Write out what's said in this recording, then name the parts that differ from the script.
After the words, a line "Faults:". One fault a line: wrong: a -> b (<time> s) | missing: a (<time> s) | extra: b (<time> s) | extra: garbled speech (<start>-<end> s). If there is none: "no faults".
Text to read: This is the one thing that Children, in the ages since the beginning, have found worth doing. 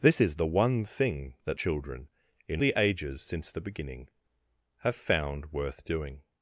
This is the one thing that Children, in the ages since the beginning, have found worth doing.
Faults:
no faults